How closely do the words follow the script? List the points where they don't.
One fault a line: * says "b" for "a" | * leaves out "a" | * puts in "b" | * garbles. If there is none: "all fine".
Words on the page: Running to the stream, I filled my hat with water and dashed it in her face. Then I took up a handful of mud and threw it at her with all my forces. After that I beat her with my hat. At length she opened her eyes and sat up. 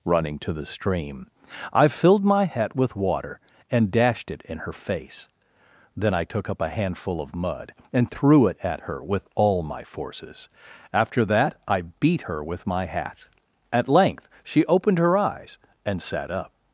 all fine